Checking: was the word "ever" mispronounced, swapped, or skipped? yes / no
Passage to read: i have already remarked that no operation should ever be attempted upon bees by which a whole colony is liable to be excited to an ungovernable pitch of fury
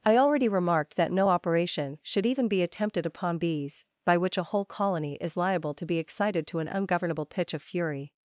yes